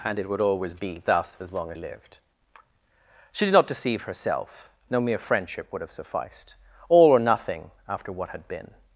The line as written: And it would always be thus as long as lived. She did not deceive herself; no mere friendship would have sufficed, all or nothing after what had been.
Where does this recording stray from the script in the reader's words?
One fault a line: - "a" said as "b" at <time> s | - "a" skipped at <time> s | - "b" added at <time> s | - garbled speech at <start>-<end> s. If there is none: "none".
none